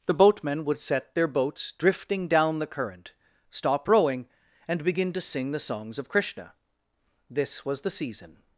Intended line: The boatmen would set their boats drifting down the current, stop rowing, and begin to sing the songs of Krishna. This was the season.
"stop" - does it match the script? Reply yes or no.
yes